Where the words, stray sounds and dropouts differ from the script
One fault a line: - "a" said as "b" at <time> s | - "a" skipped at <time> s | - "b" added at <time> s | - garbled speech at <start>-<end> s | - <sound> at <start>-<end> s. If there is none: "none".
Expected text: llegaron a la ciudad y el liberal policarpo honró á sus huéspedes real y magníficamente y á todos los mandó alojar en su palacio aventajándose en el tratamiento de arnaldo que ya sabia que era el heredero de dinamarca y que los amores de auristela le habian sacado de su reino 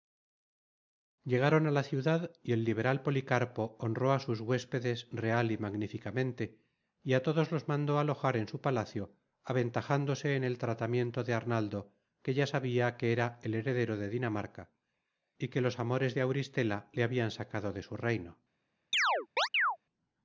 - chirp at 18.9-19.8 s